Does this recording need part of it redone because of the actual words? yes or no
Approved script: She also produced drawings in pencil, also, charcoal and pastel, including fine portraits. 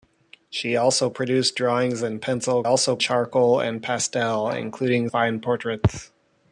no